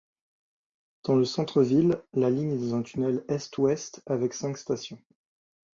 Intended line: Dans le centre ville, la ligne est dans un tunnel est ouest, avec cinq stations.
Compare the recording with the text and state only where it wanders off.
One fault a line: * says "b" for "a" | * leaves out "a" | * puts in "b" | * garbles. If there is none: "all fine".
all fine